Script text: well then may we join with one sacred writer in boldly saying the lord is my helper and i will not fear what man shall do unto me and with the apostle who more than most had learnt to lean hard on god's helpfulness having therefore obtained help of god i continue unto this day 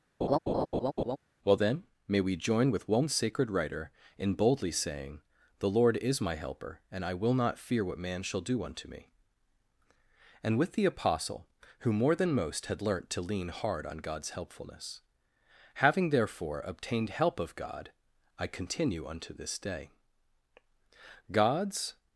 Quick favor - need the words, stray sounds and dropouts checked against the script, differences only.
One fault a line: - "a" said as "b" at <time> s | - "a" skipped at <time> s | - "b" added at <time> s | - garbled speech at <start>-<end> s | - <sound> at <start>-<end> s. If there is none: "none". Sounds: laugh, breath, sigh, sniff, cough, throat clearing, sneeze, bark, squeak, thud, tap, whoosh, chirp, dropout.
- laugh at 0.2-1.2 s
- "god's" added at 21.3 s